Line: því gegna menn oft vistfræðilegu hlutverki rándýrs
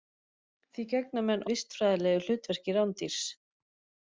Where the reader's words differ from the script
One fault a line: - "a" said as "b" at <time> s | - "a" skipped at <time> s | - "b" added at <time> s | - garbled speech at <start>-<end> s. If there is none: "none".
- "oft" skipped at 1.4 s